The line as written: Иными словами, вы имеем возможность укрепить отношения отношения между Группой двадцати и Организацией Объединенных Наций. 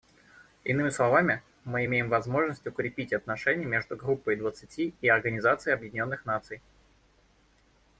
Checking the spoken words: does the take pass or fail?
fail